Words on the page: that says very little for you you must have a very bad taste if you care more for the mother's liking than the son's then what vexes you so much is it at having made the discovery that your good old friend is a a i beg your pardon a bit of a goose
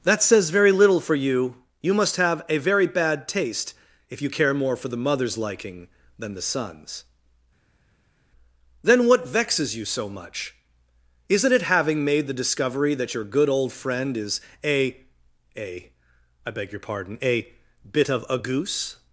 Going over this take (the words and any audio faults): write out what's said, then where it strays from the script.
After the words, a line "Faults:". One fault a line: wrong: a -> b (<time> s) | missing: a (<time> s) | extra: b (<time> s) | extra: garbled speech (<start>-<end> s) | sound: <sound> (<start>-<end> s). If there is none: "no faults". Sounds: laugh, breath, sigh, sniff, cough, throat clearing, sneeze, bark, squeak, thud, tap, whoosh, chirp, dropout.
that says very little for you you must have a very bad taste if you care more for the mother's liking than the son's then what vexes you so much isn't it having made the discovery that your good old friend is a a i beg your pardon a bit of a goose
Faults:
wrong: is -> isn't (11.3 s)
missing: at (11.6 s)